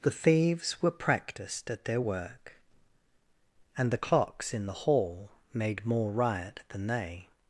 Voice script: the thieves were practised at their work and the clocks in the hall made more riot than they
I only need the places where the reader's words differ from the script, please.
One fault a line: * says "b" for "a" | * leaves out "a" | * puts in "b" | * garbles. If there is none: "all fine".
all fine